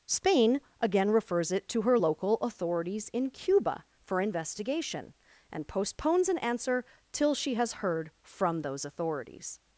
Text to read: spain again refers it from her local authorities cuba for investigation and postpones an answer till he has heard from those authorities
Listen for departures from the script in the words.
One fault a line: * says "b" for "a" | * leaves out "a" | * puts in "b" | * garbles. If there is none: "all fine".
* says "to" for "from"
* puts in "in"
* says "she" for "he"